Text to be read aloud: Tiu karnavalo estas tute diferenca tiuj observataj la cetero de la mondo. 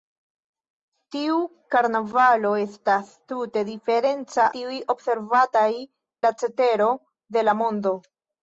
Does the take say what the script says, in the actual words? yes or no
yes